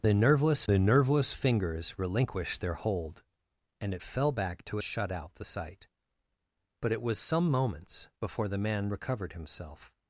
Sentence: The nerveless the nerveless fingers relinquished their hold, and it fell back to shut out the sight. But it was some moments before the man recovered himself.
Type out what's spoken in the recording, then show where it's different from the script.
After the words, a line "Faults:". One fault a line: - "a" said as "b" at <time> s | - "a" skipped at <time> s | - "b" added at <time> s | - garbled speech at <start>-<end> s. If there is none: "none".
The nerveless the nerveless fingers relinquished their hold, and it fell back to shut out the sight. But it was some moments before the man recovered himself.
Faults:
none